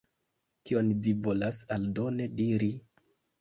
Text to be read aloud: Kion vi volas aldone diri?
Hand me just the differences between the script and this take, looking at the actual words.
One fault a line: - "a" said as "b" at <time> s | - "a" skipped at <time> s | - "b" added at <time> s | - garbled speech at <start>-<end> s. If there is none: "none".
none